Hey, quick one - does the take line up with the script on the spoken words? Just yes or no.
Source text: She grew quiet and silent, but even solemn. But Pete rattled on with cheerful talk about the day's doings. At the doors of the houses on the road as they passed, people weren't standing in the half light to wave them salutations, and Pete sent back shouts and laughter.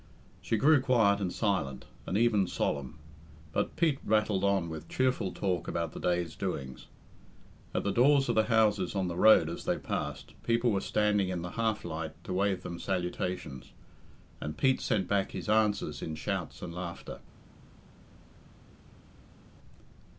no